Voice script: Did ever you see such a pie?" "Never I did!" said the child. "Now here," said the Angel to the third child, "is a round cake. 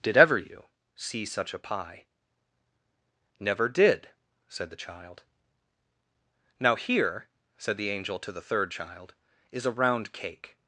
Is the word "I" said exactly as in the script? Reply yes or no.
no